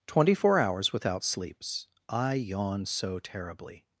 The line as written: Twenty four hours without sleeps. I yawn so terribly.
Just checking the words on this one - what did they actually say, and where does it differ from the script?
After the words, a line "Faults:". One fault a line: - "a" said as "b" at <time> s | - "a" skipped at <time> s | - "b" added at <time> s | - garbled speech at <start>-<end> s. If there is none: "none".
Twenty four hours without sleeps. I yawn so terribly.
Faults:
none